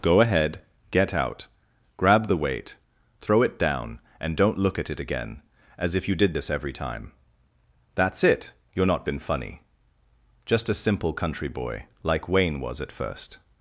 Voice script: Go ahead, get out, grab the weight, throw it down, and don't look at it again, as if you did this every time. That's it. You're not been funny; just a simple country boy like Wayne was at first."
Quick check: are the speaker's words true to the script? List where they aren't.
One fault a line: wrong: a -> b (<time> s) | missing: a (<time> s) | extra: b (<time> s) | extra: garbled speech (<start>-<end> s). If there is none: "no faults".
no faults